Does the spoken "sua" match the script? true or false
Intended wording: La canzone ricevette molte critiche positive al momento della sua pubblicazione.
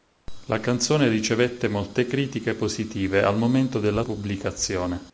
false